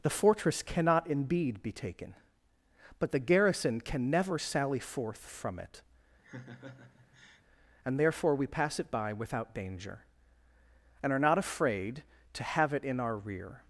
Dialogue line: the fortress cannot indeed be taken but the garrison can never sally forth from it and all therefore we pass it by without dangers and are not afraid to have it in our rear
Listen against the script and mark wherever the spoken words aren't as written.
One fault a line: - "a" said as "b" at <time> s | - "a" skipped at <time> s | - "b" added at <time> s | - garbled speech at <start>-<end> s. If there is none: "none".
- "all" skipped at 8.0 s
- "dangers" said as "danger" at 9.5 s